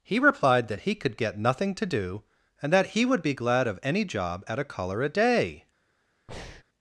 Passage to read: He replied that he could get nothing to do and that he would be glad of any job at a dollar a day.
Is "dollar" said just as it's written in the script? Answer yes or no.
no